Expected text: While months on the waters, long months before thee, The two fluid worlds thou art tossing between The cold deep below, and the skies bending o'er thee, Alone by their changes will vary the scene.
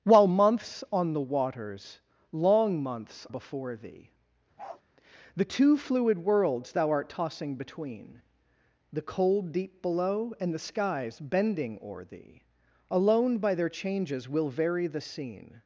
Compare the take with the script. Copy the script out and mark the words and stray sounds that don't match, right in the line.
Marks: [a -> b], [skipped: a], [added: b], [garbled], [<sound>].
While months on the waters, long months before thee, [bark] The two fluid worlds thou art tossing between The cold deep below, and the skies bending o'er thee, Alone by their changes will vary the scene.